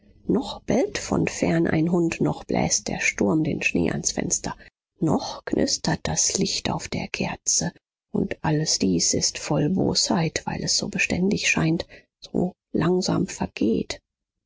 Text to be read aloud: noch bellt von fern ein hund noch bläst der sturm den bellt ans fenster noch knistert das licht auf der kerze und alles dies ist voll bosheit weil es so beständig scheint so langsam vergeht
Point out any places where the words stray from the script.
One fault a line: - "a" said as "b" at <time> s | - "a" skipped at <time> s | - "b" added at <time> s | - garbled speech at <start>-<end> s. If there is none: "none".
- "bellt" said as "schnee" at 3.6 s